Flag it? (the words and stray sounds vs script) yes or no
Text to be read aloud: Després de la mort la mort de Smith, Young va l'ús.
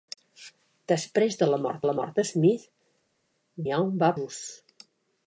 no